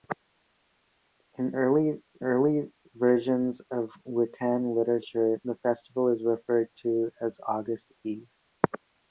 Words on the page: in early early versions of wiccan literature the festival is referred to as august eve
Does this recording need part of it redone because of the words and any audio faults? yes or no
no